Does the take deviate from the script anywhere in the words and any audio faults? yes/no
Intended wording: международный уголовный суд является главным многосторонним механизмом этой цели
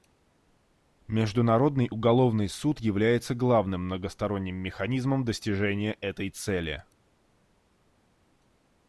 yes